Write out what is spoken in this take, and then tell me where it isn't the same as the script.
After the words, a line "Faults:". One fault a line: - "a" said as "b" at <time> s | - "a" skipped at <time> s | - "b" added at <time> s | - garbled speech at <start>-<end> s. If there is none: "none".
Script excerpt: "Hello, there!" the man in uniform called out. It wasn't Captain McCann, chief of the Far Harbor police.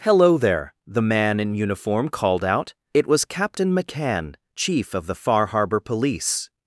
"Hello, there!" the man in uniform called out. It was Captain McCann, chief of the Far Harbor police.
Faults:
- "wasn't" said as "was" at 3.0 s